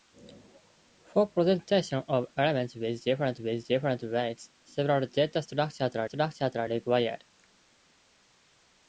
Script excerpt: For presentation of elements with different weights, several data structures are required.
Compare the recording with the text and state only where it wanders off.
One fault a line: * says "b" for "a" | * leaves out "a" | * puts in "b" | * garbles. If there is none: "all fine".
* puts in "with different"
* puts in "structures are"